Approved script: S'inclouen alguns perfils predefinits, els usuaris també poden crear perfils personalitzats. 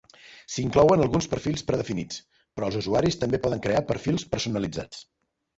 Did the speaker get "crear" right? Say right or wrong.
right